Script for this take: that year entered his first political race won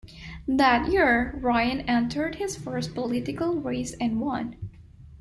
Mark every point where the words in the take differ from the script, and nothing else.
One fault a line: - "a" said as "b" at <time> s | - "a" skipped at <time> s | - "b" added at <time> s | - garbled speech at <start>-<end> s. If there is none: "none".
- "ryan" added at 1.4 s
- "and" added at 4.0 s